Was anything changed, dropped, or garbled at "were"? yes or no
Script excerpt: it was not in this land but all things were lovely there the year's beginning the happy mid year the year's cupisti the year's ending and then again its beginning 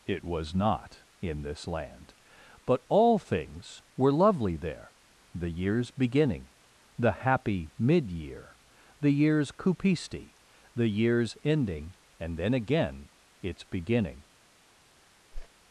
no